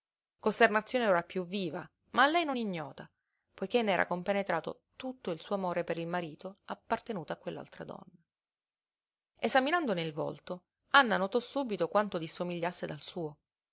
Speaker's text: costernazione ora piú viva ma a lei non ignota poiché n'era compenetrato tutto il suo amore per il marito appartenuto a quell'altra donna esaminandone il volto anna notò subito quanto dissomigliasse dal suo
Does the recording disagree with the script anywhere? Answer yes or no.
no